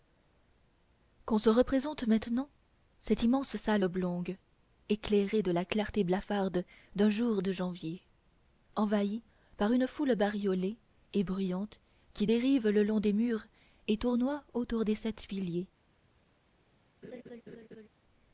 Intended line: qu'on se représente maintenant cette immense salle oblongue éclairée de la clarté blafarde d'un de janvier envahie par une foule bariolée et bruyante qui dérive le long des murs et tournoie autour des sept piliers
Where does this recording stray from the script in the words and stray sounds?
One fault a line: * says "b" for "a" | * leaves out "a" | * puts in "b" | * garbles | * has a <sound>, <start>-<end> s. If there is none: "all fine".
* puts in "jour"
* has a laugh, 17.0-17.9 s